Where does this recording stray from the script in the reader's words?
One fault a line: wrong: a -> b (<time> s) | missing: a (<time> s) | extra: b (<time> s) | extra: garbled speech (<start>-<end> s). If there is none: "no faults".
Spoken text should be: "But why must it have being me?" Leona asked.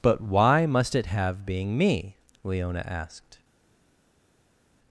no faults